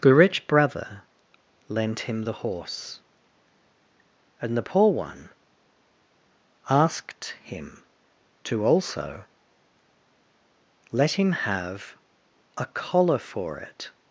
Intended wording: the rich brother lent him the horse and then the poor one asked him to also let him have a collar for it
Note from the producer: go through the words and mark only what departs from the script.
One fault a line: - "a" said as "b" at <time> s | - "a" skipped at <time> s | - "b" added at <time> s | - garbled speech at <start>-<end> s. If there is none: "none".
- "then" skipped at 4.6 s